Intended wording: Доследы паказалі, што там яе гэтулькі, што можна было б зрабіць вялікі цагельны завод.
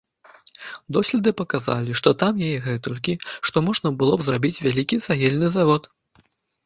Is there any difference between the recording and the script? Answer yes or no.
no